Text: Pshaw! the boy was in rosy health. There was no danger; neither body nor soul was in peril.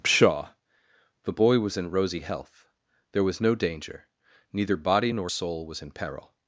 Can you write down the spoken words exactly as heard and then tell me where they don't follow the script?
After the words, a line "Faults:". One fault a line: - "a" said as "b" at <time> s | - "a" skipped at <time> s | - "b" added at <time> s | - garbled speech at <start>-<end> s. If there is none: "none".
Pshaw! the boy was in rosy health. There was no danger; neither body nor soul was in peril.
Faults:
none